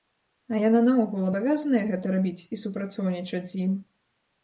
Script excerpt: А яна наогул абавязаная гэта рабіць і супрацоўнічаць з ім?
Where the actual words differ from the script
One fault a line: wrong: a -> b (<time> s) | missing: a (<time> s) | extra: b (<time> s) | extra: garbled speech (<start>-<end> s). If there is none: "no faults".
no faults